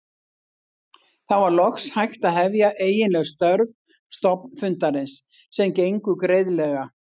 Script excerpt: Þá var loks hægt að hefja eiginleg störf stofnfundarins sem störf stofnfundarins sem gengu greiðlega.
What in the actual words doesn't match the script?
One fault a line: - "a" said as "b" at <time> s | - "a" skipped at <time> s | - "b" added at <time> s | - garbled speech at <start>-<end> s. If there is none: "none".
- "störf stofnfundarins sem" skipped at 5.8 s